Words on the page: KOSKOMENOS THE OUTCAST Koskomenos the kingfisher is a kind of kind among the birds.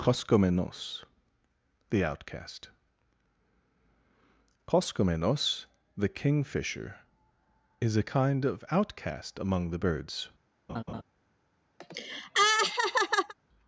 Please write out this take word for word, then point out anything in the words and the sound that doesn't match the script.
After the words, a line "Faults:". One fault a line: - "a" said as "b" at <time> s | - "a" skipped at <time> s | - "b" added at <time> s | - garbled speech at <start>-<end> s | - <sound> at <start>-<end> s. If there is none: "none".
KOSKOMENOS THE OUTCAST Koskomenos the kingfisher is a kind of outcast among the birds.
Faults:
- "kind" said as "outcast" at 8.7 s
- laugh at 10.7-11.0 s
- laugh at 11.8-13.3 s